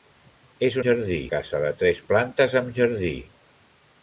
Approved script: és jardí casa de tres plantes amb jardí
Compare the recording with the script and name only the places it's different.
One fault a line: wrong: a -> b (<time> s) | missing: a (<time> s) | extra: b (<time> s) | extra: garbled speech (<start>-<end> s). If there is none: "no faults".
no faults